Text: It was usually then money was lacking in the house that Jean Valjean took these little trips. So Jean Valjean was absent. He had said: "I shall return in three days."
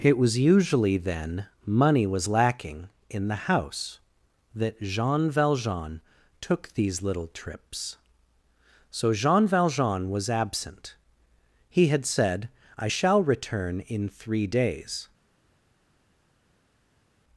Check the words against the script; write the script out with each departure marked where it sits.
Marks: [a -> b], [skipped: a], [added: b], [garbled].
It was usually then money was lacking in the house that Jean Valjean took these little trips. So Jean Valjean was absent. He had said: "I shall return in three days."